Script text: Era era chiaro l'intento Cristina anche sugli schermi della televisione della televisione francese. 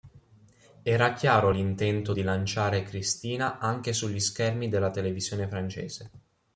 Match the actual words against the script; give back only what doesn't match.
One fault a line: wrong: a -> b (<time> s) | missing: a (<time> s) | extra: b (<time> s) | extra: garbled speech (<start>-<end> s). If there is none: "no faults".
missing: era (1.1 s)
extra: di lanciare (2.1 s)
missing: della televisione (5.5 s)